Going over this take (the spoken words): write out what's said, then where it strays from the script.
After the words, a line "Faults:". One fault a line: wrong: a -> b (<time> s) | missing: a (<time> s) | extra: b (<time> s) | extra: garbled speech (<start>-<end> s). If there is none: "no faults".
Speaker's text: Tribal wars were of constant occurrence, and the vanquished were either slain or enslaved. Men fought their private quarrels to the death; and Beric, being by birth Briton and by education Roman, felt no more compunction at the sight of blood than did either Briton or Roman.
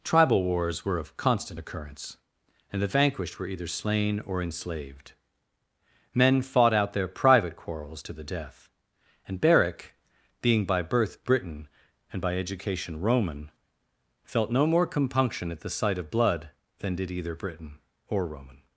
Tribal wars were of constant occurrence, and the vanquished were either slain or enslaved. Men fought out their private quarrels to the death; and Beric, being by birth Briton and by education Roman, felt no more compunction at the sight of blood than did either Briton or Roman.
Faults:
extra: out (6.7 s)